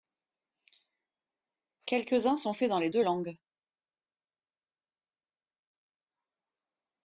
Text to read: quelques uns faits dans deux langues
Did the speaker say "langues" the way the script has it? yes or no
yes